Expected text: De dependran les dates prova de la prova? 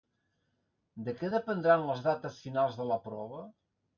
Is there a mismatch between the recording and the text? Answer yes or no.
yes